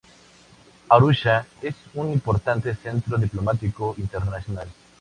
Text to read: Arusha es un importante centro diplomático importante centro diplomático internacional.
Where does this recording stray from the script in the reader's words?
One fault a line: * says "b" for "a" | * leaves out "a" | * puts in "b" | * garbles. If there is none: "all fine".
* leaves out "importante centro diplomático"